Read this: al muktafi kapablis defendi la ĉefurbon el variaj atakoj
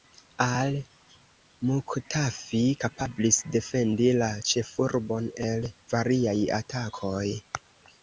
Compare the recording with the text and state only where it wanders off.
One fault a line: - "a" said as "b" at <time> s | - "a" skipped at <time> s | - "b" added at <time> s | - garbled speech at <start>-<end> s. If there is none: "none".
none